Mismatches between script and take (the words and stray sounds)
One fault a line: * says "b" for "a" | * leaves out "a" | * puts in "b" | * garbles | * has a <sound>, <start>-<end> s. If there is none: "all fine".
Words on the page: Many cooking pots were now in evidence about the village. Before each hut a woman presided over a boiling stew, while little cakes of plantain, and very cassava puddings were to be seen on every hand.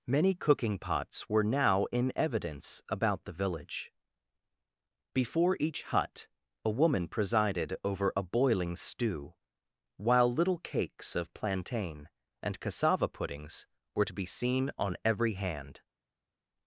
* leaves out "very"